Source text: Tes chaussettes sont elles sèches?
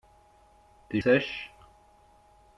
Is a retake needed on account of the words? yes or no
yes